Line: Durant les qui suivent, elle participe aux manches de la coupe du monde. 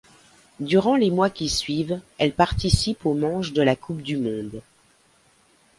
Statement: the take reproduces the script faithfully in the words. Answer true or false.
false